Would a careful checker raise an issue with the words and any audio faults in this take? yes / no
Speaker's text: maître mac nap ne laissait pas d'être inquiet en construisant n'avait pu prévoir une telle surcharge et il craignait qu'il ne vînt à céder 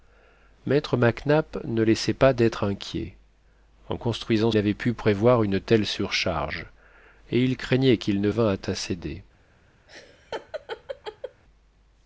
yes